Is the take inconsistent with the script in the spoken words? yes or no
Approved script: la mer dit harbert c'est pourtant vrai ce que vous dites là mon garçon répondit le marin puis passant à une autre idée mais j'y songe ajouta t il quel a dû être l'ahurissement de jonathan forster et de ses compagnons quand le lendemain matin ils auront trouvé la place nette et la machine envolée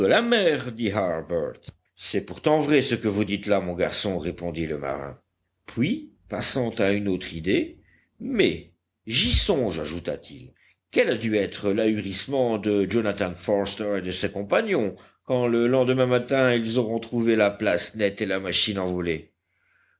no